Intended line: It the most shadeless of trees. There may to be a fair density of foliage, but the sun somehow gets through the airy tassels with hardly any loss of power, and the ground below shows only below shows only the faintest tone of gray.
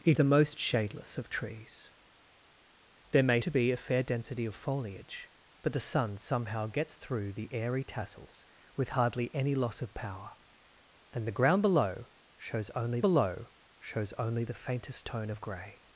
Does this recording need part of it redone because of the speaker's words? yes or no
no